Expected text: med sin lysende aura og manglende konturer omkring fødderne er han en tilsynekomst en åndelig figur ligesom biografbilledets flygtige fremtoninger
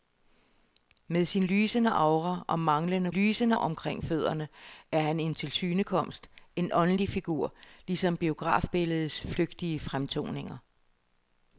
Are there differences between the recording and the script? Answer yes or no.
yes